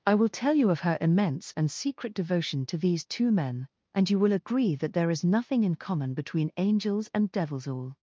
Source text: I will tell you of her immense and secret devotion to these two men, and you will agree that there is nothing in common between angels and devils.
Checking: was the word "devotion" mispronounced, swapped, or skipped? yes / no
no